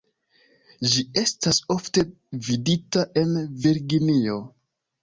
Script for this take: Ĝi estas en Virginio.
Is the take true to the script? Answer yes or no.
no